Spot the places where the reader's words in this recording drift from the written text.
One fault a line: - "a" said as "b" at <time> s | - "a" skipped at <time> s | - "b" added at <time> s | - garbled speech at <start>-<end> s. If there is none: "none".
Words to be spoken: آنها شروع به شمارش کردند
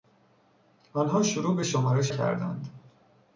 none